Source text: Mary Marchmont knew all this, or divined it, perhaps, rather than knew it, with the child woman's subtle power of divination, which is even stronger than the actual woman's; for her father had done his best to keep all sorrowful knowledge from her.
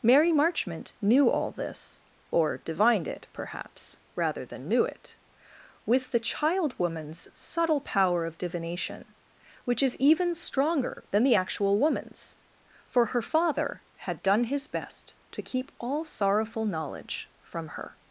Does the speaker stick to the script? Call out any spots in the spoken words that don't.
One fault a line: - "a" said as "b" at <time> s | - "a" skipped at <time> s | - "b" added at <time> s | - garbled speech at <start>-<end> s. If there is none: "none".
none